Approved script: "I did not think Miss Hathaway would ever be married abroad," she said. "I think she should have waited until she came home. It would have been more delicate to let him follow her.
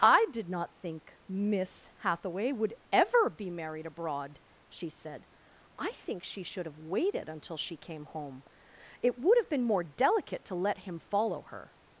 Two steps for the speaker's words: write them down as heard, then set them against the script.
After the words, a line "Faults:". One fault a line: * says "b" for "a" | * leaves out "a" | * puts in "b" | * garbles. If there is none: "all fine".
"I did not think Miss Hathaway would ever be married abroad," she said. "I think she should have waited until she came home. It would have been more delicate to let him follow her.
Faults:
all fine